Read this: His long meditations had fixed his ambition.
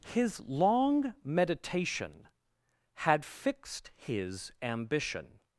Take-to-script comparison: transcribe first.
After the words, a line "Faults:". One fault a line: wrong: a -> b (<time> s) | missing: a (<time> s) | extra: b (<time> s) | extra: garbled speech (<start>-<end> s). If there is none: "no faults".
His long meditation had fixed his ambition.
Faults:
wrong: meditations -> meditation (1.2 s)